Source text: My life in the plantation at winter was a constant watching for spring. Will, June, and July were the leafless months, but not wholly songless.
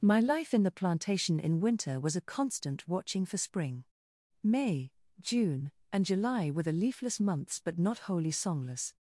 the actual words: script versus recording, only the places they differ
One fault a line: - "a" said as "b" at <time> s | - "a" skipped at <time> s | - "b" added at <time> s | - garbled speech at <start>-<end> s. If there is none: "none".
- "at" said as "in" at 1.4 s
- "Will" said as "May" at 4.4 s